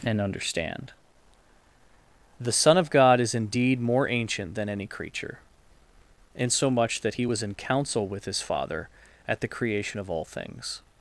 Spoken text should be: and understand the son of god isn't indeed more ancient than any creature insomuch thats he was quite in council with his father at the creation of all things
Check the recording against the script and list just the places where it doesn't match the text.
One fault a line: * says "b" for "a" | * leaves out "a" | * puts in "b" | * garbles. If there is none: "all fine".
* says "is" for "isn't"
* says "that" for "thats"
* leaves out "quite"